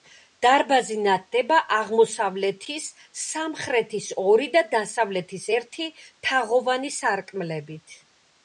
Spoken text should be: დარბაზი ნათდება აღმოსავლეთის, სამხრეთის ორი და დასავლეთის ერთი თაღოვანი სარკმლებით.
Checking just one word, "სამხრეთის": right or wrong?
right